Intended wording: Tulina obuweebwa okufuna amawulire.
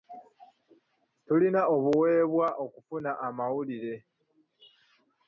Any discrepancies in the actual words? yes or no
no